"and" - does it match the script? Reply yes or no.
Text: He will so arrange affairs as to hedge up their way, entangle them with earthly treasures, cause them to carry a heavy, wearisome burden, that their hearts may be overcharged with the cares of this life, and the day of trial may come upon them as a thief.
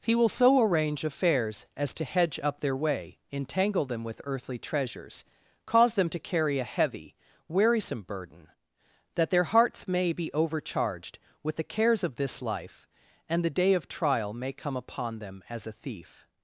yes